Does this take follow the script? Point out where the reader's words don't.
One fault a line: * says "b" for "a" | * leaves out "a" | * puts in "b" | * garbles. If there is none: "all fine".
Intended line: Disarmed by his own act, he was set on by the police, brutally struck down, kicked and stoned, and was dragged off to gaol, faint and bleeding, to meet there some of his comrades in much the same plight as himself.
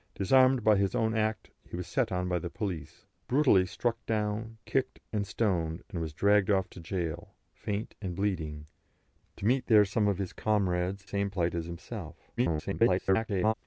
* leaves out "in much the"
* garbles